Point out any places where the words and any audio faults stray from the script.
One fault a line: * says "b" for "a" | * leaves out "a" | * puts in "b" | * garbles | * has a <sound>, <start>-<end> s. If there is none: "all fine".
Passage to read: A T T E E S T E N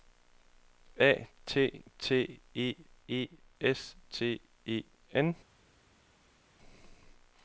all fine